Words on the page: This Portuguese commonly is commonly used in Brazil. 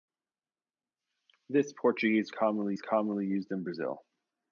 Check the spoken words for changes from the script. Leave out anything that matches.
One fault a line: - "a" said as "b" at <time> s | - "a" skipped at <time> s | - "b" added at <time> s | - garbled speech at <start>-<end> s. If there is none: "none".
none